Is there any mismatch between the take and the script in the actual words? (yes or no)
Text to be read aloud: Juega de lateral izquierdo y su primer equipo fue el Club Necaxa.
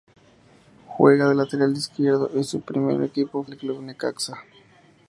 yes